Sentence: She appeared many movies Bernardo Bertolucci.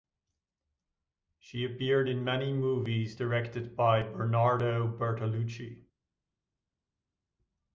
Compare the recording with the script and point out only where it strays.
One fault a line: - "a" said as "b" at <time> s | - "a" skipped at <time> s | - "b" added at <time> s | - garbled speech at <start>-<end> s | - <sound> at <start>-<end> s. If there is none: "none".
- "in" added at 2.1 s
- "directed by" added at 3.1 s